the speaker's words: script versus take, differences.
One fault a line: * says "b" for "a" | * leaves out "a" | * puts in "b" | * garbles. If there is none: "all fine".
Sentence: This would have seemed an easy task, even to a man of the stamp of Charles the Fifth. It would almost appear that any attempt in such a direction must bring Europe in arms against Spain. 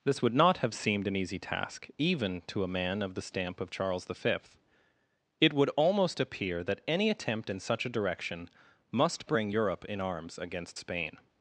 * puts in "not"